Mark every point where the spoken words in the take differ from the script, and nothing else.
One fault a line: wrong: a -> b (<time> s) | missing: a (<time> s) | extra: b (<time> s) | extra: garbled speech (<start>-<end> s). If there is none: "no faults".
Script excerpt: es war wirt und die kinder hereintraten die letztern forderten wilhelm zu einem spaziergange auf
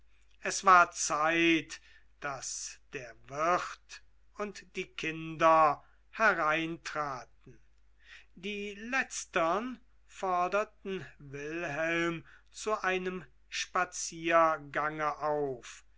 extra: zeit daß der (0.9 s)